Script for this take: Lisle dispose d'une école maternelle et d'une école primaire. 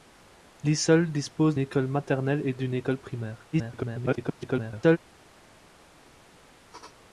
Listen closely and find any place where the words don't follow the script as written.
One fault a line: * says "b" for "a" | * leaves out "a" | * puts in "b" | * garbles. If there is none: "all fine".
* leaves out "d'une"
* garbles